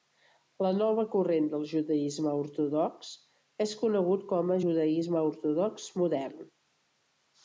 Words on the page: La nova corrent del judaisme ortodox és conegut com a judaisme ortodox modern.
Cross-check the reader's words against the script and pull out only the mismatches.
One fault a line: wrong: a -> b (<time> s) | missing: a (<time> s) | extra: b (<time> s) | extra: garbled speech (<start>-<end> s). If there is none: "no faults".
no faults